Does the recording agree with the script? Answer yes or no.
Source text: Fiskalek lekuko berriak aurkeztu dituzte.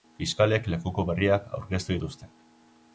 yes